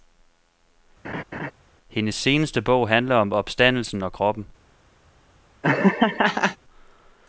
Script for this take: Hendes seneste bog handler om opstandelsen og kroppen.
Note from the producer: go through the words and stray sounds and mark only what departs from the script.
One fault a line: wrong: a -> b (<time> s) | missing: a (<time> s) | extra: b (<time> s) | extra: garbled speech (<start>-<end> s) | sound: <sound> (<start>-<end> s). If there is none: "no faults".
sound: laugh (1.0-1.5 s)
sound: laugh (5.6-6.6 s)